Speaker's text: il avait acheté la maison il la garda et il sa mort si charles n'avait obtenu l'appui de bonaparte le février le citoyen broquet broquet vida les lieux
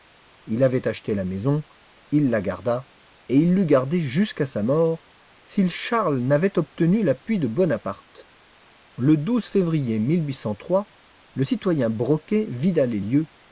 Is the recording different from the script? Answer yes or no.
yes